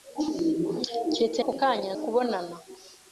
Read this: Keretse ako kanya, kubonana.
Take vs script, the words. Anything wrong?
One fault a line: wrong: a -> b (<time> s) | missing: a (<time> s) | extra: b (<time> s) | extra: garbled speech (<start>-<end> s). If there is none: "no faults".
no faults